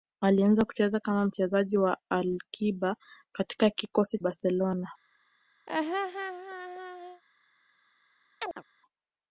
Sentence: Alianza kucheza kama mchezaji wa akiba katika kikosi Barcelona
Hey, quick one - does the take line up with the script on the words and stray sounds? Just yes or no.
no